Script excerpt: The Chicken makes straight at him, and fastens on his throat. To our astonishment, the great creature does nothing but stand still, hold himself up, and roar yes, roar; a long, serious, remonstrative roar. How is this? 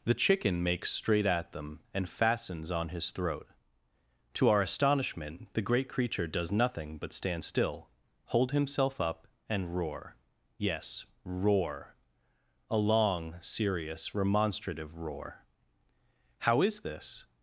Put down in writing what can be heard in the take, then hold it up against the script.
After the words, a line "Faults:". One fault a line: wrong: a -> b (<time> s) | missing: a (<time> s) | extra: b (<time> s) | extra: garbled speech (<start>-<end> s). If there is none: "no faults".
The Chicken makes straight at them, and fastens on his throat. To our astonishment, the great creature does nothing but stand still, hold himself up, and roar yes, roar; a long, serious, remonstrative roar. How is this?
Faults:
wrong: him -> them (1.5 s)